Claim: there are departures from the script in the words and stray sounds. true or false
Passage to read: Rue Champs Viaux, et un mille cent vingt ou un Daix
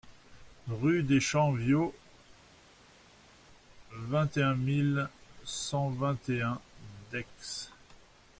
true